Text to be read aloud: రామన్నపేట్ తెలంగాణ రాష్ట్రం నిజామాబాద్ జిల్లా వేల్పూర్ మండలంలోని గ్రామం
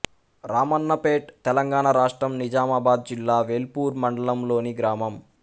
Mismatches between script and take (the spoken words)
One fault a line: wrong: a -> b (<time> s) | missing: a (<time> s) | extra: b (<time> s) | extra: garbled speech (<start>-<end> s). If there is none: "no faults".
no faults